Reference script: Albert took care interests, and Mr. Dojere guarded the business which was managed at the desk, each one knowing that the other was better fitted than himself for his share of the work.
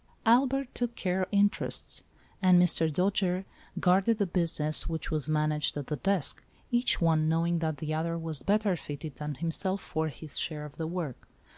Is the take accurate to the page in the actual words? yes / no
yes